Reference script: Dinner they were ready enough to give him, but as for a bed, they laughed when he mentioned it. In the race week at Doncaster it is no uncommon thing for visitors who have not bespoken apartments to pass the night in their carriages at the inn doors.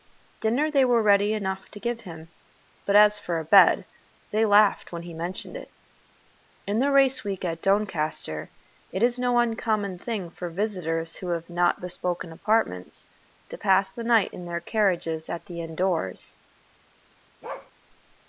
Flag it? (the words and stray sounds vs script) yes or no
yes